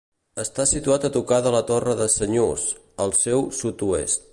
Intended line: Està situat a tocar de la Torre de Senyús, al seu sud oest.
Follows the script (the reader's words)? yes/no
yes